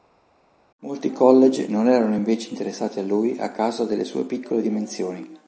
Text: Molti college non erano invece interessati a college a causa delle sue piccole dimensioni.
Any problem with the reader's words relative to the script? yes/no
yes